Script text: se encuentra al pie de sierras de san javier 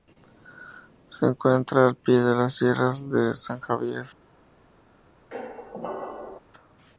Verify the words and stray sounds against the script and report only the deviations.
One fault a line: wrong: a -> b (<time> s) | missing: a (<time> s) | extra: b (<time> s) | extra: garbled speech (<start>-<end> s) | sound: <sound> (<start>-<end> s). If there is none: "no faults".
extra: las (2.4 s)
sound: squeak (5.3-6.4 s)